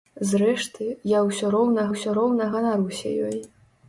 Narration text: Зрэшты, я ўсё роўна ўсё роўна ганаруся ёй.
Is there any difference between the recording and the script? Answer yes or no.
no